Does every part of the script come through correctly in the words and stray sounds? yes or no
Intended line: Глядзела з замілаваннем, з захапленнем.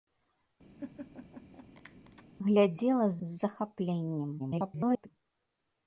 no